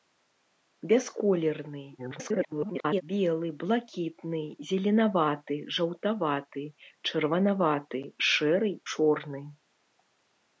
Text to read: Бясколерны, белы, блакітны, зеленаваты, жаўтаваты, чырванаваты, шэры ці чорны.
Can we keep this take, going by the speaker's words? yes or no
no